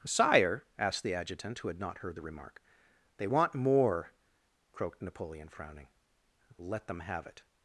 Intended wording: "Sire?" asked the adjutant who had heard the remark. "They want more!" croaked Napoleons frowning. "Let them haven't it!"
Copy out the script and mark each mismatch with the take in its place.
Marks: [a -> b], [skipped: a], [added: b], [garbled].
"Sire?" asked the adjutant who had [added: not] heard the remark. "They want more!" croaked [Napoleons -> Napoleon] frowning. "Let them [haven't -> have] it!"